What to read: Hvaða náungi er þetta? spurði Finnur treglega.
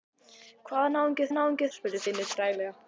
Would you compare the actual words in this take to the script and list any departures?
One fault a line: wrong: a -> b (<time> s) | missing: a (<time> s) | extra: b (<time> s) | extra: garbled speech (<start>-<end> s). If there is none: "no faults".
wrong: þetta -> náungi (1.4 s)